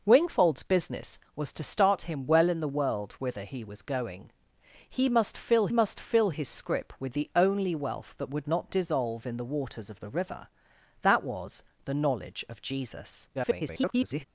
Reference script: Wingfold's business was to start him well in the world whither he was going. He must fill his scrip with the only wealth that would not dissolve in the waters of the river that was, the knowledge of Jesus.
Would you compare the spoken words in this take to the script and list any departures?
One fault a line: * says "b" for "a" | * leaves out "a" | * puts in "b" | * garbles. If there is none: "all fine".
* puts in "must fill"
* garbles